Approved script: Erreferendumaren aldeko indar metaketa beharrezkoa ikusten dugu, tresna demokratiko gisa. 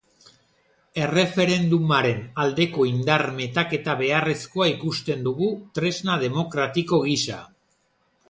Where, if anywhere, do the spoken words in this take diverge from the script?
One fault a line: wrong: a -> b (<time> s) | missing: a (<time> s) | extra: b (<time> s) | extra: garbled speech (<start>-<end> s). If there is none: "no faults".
no faults